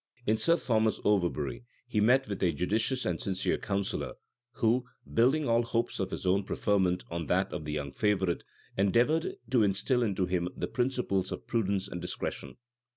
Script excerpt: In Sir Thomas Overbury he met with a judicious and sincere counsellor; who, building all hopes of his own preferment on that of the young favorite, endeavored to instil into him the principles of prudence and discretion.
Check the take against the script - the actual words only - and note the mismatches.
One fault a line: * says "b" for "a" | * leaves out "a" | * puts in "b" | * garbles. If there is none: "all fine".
all fine